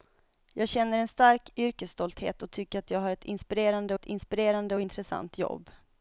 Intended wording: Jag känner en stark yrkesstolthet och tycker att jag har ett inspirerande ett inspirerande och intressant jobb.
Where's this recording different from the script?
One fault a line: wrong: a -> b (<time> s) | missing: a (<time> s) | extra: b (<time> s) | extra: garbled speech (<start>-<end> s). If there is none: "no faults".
no faults